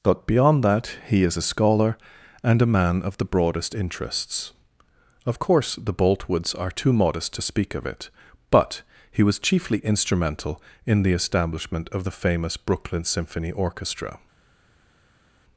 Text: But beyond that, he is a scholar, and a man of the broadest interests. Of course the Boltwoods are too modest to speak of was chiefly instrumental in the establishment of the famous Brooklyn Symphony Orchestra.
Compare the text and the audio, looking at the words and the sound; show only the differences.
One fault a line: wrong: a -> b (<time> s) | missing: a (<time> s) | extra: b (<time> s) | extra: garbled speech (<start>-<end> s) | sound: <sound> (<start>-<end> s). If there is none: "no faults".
extra: it but he (7.8 s)